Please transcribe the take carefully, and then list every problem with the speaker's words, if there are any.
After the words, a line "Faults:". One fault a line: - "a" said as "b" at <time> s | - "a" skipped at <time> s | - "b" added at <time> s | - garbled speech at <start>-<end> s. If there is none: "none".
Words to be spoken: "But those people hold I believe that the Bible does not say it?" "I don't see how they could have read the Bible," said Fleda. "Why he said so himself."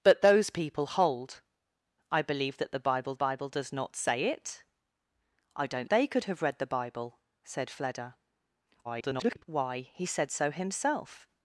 "But those people hold I believe that the Bible Bible does not say it?" "I don't they could have read the Bible," said Fleda. [garbled] "Why he said so himself."
Faults:
- "Bible" added at 3.1 s
- "see how" skipped at 5.9 s
- garbled speech at 8.8-9.4 s